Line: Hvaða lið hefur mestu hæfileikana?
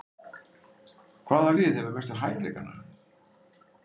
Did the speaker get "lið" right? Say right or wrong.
right